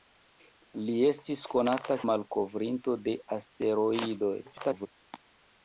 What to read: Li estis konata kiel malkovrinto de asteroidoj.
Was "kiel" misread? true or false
true